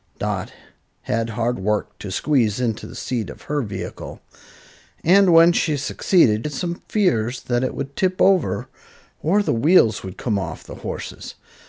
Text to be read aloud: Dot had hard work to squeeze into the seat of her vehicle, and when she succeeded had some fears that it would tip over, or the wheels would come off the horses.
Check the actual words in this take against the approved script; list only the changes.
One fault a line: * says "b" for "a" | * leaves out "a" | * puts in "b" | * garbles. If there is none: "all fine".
all fine